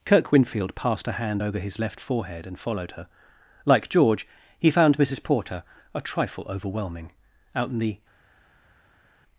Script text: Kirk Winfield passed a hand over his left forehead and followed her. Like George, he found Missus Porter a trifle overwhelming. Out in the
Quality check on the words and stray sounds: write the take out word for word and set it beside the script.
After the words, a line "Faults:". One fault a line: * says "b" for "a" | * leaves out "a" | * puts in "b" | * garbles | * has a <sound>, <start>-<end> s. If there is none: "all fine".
Kirk Winfield passed a hand over his left forehead and followed her. Like George, he found Missus Porter a trifle overwhelming. Out in the
Faults:
all fine